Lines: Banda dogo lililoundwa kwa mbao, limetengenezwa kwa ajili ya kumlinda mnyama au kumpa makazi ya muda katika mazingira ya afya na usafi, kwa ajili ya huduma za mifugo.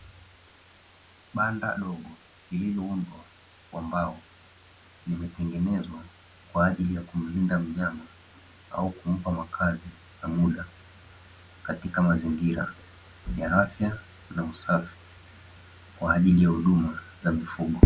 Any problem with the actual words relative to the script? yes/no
no